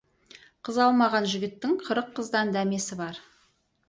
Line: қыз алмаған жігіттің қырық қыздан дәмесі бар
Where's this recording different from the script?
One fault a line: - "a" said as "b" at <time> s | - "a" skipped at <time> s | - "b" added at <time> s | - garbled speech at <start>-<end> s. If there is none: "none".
none